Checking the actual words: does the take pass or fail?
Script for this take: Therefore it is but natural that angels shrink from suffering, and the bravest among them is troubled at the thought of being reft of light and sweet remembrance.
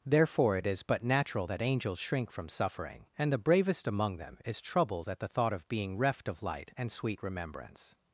pass